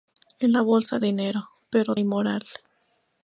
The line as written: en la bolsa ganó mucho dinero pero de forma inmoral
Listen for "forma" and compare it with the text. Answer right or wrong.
wrong